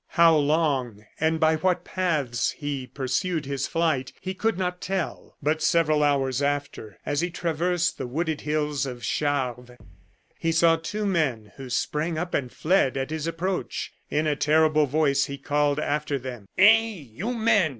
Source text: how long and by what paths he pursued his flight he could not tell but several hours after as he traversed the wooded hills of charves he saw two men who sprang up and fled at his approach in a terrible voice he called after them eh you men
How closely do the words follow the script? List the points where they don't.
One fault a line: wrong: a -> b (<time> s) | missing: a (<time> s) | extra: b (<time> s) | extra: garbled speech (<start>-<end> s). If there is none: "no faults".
no faults